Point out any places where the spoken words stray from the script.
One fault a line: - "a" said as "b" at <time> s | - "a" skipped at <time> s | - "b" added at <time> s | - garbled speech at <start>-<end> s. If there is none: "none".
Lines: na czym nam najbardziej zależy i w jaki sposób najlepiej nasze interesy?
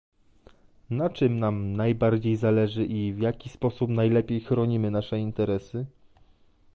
- "chronimy" added at 4.4 s